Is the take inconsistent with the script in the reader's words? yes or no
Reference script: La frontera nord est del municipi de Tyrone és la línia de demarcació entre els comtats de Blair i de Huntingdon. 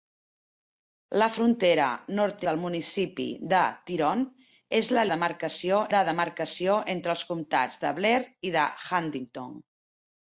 yes